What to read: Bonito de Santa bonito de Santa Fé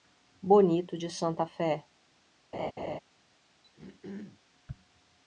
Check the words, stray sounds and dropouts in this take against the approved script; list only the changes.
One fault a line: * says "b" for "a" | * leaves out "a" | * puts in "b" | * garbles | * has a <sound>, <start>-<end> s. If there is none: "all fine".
* leaves out "bonito de Santa"
* has a laugh, 2.5-3.0 s
* has a throat clearing, 3.6-4.4 s